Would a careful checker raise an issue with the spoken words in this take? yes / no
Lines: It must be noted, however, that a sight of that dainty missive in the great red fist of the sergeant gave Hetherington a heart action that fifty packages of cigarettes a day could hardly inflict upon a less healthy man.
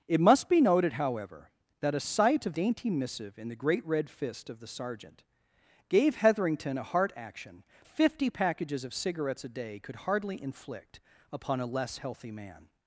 yes